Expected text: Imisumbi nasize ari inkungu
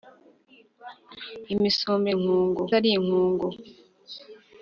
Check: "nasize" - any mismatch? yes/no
yes